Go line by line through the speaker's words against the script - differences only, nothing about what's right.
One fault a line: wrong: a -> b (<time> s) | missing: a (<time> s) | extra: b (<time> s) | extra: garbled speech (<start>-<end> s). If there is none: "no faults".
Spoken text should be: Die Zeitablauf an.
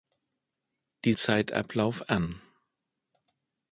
no faults